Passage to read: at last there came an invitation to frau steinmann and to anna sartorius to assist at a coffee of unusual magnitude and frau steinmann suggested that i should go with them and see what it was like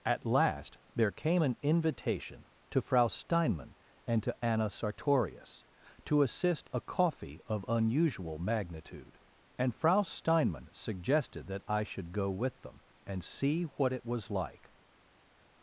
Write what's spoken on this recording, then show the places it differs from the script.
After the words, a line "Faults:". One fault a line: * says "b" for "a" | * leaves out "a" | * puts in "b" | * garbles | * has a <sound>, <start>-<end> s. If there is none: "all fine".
at last there came an invitation to frau steinmann and to anna sartorius to assist a coffee of unusual magnitude and frau steinmann suggested that i should go with them and see what it was like
Faults:
* leaves out "at"